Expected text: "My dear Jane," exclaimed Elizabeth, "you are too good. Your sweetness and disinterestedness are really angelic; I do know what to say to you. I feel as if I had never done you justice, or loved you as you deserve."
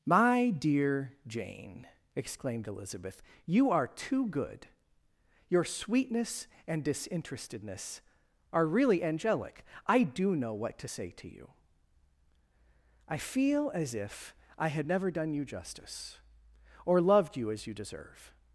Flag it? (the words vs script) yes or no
no